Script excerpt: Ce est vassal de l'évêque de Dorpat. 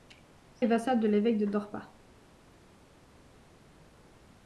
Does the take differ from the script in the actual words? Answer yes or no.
no